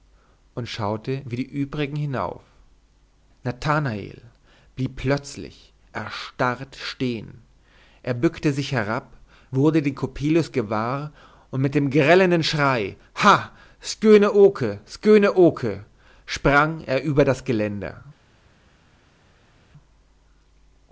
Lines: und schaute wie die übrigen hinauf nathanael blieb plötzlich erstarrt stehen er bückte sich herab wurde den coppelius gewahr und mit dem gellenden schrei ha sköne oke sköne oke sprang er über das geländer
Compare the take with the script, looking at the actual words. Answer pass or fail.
pass